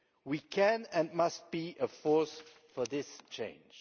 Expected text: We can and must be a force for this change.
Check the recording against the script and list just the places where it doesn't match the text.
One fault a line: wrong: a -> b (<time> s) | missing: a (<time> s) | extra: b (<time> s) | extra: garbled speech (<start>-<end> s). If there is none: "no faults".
no faults